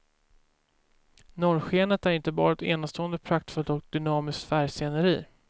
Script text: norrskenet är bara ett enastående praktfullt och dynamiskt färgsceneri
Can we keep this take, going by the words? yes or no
no